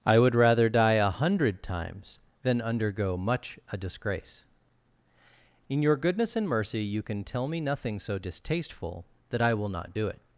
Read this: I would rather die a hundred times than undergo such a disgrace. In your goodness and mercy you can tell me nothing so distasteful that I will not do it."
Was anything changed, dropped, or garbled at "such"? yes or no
yes